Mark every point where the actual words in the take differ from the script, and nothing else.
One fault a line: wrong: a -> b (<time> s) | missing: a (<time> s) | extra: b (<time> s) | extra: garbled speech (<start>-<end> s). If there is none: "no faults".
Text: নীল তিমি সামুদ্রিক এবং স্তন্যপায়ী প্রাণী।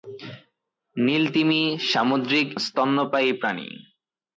missing: এবং (2.5 s)